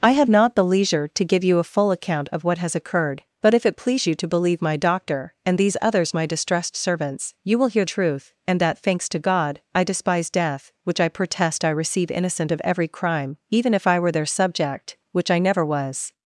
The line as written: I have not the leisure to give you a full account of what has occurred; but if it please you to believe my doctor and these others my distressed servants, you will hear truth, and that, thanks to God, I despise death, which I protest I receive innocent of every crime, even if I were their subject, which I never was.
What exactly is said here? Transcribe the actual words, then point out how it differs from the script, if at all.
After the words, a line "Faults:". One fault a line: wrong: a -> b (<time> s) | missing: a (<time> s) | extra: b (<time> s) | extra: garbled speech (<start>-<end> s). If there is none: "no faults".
I have not the leisure to give you a full account of what has occurred; but if it please you to believe my doctor and these others my distressed servants, you will hear truth, and that, thanks to God, I despise death, which I protest I receive innocent of every crime, even if I were their subject, which I never was.
Faults:
no faults